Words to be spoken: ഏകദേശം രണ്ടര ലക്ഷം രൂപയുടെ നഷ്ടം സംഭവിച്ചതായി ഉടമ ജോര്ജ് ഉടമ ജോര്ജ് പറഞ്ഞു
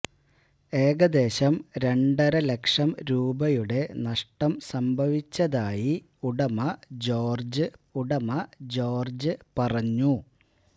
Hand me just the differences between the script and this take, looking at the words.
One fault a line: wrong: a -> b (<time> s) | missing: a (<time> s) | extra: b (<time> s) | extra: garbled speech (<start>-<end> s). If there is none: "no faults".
no faults